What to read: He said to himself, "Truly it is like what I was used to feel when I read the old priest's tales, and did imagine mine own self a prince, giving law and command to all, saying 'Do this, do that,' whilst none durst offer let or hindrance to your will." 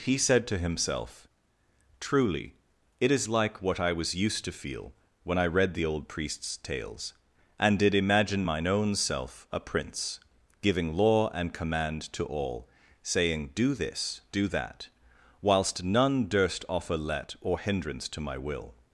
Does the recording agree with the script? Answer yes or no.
no